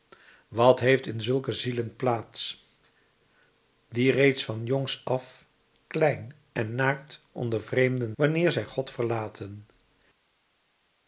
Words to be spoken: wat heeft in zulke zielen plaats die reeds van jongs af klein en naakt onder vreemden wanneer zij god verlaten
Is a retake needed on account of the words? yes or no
no